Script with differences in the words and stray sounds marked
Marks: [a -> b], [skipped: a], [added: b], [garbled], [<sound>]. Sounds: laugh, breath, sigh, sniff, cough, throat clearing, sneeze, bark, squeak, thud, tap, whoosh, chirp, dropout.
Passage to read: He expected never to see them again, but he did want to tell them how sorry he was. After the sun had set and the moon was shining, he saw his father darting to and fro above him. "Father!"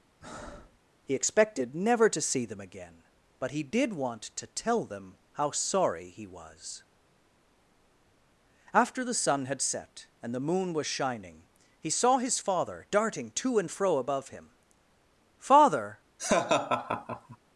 [breath] He expected never to see them again, but he did want to tell them how sorry he was. After the sun had set and the moon was shining, he saw his father darting to and fro above him. "Father!" [laugh]